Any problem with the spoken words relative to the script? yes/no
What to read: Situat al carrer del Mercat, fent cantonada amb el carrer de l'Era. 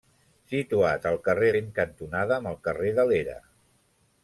yes